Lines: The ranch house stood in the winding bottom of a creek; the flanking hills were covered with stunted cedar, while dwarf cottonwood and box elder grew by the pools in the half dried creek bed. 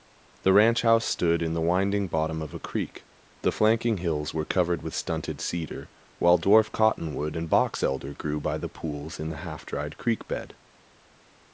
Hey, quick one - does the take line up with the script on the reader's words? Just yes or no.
yes